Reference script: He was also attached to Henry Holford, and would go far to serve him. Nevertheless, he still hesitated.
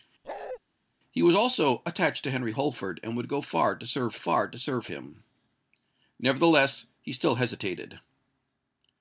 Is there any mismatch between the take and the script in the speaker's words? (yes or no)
yes